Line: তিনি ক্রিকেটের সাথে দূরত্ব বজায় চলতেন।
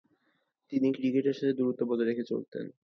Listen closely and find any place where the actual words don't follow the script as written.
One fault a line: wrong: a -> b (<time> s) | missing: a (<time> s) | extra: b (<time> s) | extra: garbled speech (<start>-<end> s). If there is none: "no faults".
extra: রেখে (2.1 s)